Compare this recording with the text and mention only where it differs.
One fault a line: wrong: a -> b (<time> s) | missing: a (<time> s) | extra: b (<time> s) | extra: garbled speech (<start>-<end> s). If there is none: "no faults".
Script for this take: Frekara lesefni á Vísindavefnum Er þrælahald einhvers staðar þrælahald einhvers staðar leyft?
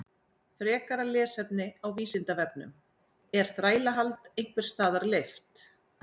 missing: þrælahald einhvers staðar (5.1 s)